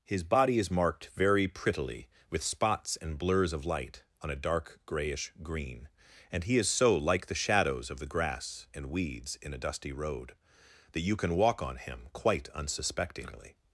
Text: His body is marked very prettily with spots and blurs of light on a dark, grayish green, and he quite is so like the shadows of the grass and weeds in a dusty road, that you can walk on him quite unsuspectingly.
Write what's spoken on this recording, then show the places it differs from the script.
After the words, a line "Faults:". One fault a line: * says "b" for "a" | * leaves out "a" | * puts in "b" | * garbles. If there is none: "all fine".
His body is marked very prettily with spots and blurs of light on a dark, grayish green, and he is so like the shadows of the grass and weeds in a dusty road, that you can walk on him quite unsuspectingly.
Faults:
* leaves out "quite"